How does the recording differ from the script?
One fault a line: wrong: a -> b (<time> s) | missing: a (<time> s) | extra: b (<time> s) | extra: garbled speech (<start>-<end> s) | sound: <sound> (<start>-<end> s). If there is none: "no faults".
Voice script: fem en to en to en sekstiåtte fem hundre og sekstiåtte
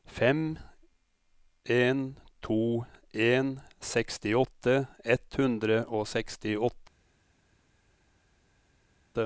missing: to en (3.6 s)
wrong: fem -> ett (5.0 s)